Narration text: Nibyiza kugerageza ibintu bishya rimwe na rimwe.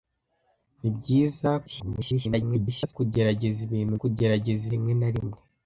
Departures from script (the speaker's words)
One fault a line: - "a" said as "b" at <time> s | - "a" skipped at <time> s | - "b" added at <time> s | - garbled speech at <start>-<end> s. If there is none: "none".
- garbled speech at 1.7-2.9 s
- "bishya" said as "kugerageza" at 4.0 s